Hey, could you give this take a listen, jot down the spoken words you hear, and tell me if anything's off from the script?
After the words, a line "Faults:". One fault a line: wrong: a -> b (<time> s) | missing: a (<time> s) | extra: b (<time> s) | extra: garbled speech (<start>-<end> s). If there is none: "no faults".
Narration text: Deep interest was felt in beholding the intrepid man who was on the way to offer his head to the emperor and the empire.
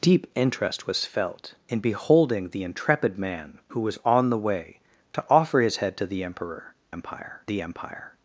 Deep interest was felt in beholding the intrepid man who was on the way to offer his head to the emperor empire the empire.
Faults:
wrong: and -> empire (6.9 s)